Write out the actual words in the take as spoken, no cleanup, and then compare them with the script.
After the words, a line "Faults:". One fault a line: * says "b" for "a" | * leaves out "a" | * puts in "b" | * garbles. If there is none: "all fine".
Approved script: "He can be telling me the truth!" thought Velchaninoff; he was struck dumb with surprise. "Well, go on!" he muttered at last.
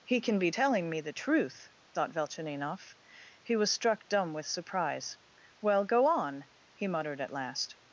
"He can be telling me the truth!" thought Velchaninoff; he was struck dumb with surprise. "Well, go on!" he muttered at last.
Faults:
all fine